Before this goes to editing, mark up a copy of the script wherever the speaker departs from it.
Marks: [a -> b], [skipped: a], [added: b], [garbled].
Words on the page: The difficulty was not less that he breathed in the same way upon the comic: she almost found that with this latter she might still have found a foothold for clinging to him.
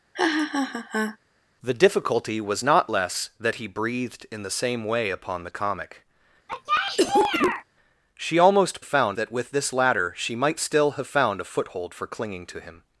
The difficulty was not less that he breathed in the same way upon the comic: she almost found that with this latter she might still have found a foothold for clinging to him.